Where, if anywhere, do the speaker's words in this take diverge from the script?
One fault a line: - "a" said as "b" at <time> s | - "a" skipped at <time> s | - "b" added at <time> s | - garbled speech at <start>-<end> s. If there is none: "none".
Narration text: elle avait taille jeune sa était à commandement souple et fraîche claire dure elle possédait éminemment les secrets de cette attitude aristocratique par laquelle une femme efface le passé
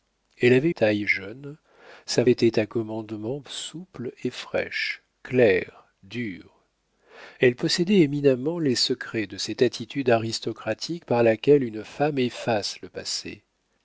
none